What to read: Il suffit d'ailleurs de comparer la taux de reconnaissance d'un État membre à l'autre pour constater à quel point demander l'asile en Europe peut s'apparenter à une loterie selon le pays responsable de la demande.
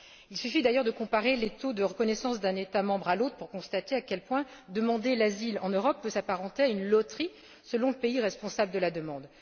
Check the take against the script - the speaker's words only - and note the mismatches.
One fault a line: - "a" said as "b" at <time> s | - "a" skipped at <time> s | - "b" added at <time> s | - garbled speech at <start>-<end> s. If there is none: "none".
- "la" said as "les" at 1.4 s